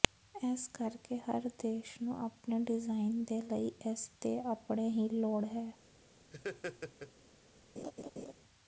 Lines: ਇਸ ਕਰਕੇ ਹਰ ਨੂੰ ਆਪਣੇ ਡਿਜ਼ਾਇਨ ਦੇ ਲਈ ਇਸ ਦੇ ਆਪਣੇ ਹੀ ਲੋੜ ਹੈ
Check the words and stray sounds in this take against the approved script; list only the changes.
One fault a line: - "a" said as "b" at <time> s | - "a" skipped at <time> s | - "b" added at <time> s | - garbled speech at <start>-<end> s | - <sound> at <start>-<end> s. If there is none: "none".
- "ਦੇਸ਼" added at 1.6 s
- laugh at 6.3-7.1 s
- laugh at 7.8-8.3 s